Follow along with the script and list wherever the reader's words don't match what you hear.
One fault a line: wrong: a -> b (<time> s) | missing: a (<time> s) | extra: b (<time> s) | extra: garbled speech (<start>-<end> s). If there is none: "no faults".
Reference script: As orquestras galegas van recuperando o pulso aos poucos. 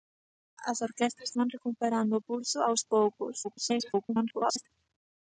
missing: galegas (1.3 s)
extra: garbled speech (3.4-4.7 s)